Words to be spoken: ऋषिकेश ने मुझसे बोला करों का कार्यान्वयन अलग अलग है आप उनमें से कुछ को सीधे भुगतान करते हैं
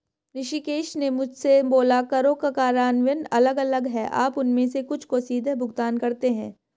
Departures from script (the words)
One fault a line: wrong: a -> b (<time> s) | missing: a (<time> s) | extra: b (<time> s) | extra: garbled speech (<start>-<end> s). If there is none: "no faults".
no faults